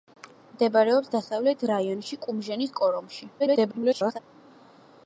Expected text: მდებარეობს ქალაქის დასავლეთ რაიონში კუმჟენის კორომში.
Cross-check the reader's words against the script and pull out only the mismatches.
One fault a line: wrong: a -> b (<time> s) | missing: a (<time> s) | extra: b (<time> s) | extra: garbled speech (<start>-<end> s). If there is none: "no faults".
missing: ქალაქის (1.1 s)
extra: garbled speech (3.4-4.2 s)